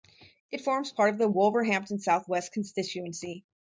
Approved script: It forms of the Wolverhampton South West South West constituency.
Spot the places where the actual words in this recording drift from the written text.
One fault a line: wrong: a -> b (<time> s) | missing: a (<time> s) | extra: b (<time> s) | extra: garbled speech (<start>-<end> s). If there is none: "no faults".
extra: part (0.9 s)
missing: South West (2.5 s)